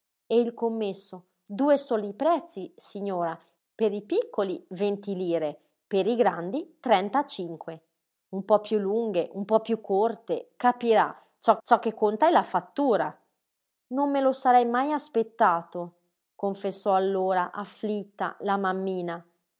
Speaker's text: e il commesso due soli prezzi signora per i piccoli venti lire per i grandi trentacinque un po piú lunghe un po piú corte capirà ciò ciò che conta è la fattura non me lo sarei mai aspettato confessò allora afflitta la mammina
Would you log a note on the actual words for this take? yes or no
no